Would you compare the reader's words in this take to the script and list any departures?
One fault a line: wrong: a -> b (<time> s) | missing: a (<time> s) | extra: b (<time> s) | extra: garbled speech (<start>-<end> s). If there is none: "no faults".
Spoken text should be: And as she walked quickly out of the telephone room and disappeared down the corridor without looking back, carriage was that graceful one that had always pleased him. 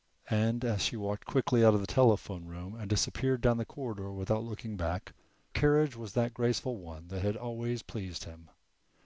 no faults